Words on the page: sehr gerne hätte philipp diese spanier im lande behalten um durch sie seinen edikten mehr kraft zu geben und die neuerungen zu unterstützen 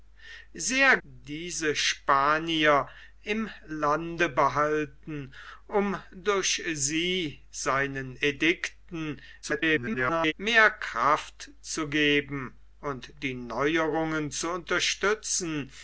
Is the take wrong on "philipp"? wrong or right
wrong